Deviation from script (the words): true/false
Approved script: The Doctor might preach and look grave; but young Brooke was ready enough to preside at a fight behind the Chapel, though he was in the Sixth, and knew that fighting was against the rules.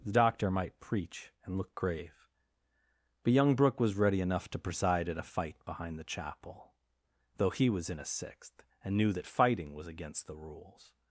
true